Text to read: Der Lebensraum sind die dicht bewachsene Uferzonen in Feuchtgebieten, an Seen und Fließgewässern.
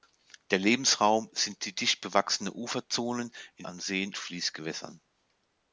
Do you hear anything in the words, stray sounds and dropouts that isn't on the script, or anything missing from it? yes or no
yes